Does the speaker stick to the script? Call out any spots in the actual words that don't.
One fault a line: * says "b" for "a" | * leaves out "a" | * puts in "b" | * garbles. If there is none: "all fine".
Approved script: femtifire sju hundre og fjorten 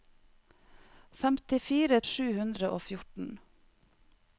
all fine